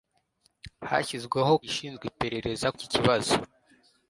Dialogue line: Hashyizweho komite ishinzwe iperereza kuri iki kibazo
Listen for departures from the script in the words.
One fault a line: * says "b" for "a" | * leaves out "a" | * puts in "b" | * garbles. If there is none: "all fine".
* leaves out "komite"
* leaves out "kuri"